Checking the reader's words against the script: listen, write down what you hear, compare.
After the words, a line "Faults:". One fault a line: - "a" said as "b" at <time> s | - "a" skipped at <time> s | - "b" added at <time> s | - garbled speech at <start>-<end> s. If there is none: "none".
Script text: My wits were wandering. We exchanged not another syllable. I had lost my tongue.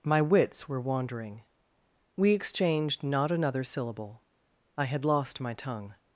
My wits were wandering. We exchanged not another syllable. I had lost my tongue.
Faults:
none